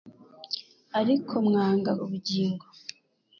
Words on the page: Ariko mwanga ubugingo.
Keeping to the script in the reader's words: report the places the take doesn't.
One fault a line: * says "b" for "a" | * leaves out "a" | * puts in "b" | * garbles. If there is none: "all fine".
all fine